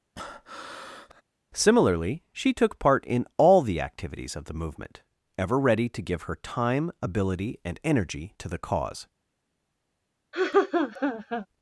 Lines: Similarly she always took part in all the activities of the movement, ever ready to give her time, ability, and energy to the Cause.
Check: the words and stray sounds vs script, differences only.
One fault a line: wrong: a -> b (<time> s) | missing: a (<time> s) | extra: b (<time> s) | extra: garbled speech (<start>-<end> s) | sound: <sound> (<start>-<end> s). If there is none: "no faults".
sound: breath (0.2-1.2 s)
missing: always (2.5 s)
sound: laugh (10.3-11.5 s)